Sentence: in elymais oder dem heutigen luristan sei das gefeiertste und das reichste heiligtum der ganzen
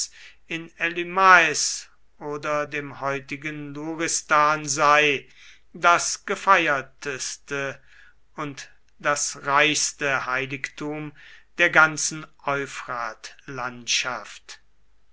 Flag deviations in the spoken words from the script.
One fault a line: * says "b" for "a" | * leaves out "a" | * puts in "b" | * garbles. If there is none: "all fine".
all fine